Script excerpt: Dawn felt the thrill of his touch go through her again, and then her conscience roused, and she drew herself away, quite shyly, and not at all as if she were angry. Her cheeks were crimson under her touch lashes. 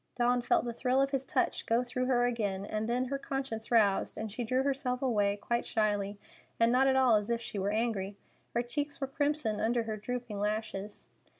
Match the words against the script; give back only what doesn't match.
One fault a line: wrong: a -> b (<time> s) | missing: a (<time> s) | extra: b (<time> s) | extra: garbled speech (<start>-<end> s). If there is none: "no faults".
wrong: touch -> drooping (10.0 s)